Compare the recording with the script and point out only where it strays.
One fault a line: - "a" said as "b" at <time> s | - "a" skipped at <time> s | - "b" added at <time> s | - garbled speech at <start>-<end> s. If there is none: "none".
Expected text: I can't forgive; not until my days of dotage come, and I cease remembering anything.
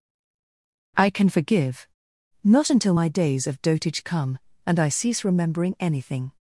- "can't" said as "can" at 1.1 s